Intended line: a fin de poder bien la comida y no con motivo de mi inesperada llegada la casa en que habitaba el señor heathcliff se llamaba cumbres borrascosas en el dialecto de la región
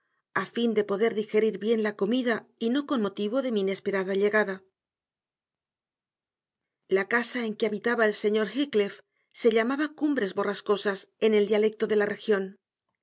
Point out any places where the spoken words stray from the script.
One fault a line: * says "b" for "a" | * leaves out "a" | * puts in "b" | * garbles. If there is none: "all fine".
* puts in "digerir"